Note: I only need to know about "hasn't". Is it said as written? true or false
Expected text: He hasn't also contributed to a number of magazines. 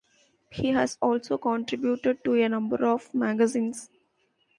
false